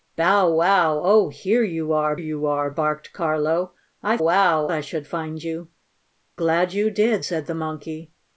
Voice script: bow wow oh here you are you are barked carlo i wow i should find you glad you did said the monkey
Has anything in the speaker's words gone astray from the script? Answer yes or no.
no